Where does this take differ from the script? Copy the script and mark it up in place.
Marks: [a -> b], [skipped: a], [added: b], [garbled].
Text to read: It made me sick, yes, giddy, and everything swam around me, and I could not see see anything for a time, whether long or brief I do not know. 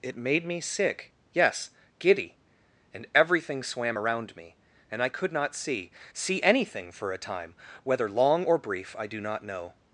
It made me sick, yes, giddy, and everything swam around me, and I could not see see anything for a time, whether long or brief I do not know.